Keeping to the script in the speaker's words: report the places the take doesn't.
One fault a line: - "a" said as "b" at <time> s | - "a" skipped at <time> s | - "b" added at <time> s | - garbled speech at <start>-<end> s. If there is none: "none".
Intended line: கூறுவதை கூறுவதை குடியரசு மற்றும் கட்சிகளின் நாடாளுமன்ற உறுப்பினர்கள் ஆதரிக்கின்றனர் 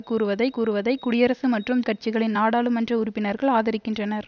none